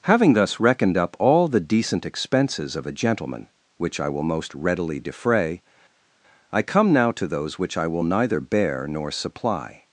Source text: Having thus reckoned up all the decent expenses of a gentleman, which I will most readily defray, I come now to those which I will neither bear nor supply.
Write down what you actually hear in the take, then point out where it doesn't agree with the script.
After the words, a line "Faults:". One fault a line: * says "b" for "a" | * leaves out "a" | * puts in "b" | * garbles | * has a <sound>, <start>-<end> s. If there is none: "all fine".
Having thus reckoned up all the decent expenses of a gentleman, which I will most readily defray, I come now to those which I will neither bear nor supply.
Faults:
all fine